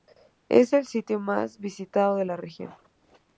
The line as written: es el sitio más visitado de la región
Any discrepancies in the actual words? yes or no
no